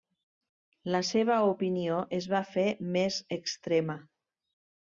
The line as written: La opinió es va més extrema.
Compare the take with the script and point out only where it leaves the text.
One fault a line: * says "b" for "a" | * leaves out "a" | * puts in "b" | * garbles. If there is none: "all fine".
* puts in "seva"
* puts in "fer"